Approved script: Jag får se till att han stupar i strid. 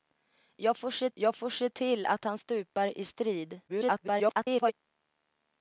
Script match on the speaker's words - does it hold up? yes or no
no